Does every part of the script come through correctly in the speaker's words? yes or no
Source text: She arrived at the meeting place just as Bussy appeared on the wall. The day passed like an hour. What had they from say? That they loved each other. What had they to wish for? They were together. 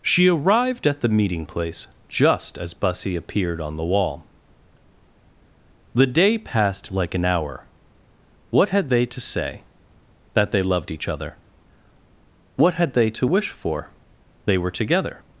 no